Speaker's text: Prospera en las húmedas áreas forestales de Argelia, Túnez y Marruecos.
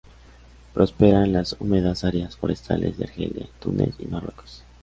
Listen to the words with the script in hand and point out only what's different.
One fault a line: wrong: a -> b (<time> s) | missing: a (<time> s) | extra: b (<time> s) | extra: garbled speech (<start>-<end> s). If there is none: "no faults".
no faults